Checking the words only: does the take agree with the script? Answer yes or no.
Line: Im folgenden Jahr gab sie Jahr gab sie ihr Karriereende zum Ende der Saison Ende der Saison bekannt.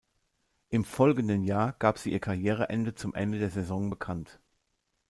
no